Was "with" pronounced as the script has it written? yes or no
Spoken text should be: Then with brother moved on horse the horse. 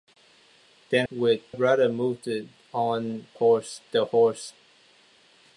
yes